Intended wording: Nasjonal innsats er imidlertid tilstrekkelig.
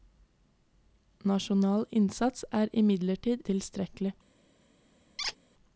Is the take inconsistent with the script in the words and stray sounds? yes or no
yes